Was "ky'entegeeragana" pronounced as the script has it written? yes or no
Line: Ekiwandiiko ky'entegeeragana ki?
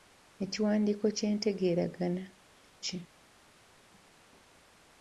yes